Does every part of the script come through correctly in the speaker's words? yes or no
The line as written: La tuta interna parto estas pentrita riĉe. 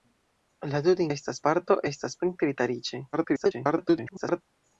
no